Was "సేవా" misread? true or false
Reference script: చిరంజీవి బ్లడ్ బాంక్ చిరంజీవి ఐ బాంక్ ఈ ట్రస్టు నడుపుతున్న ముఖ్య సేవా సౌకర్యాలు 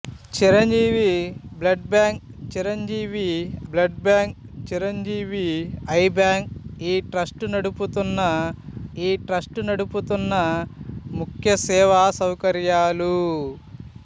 false